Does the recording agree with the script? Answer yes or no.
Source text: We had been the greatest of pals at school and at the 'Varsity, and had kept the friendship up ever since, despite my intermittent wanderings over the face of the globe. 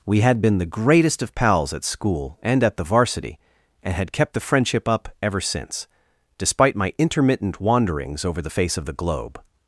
yes